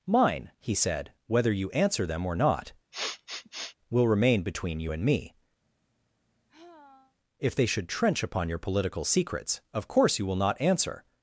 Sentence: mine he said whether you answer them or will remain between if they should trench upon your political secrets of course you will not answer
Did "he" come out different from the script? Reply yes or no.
no